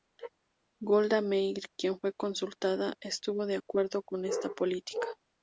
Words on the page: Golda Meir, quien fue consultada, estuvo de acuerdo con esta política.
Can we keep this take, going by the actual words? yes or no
yes